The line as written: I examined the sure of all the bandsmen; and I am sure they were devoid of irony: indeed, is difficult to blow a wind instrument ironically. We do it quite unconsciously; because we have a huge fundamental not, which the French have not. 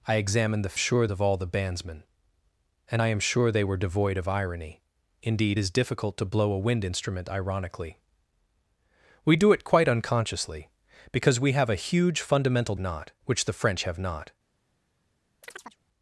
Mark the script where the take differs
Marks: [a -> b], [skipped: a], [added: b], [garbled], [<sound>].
I examined the sure of all the bandsmen; and I am sure they were devoid of irony: indeed, is difficult to blow a wind instrument ironically. We do it quite unconsciously; because we have a huge fundamental not, which the French have not. [chirp]